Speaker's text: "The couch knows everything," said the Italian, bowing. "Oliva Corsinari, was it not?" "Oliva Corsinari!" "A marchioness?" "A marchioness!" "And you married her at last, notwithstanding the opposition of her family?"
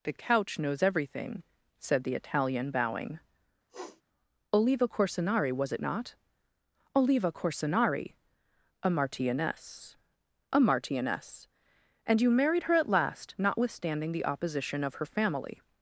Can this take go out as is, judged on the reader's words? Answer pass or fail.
pass